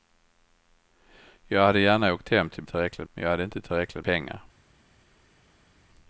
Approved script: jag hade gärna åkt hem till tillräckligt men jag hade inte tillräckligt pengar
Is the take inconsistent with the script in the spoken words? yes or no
no